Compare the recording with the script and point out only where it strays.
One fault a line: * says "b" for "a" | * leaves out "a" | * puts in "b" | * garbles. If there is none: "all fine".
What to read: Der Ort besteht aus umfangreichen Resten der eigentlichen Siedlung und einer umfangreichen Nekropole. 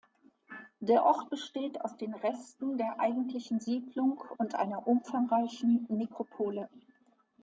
* says "den" for "umfangreichen"